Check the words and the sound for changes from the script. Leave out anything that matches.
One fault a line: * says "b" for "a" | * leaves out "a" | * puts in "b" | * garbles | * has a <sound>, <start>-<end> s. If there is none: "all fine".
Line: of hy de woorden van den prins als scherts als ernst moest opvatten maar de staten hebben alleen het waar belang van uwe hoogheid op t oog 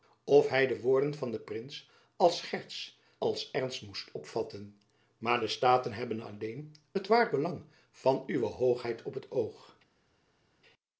all fine